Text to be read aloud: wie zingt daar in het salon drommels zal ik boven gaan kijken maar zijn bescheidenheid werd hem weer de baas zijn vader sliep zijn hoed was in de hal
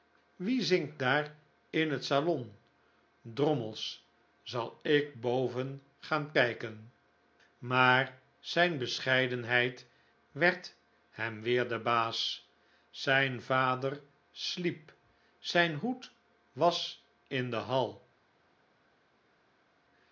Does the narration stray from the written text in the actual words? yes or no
no